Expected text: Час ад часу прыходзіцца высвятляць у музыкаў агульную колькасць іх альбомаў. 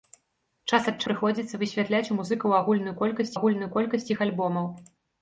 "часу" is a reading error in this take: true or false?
true